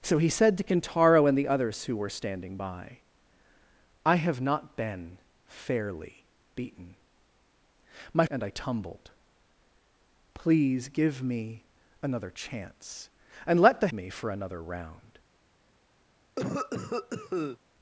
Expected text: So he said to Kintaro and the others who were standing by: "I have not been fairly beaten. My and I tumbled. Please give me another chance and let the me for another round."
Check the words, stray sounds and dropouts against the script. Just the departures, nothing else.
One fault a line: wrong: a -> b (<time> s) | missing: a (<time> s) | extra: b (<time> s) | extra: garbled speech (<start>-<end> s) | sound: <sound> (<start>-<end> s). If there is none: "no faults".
sound: cough (16.4-17.6 s)